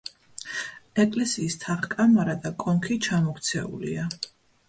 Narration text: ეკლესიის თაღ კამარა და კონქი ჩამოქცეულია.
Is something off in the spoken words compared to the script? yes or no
no